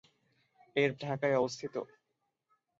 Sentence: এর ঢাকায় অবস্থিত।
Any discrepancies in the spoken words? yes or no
no